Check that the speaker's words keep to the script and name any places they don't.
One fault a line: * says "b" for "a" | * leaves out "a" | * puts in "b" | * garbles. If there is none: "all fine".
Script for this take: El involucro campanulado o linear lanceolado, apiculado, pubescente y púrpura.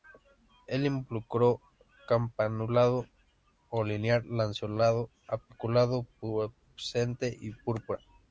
all fine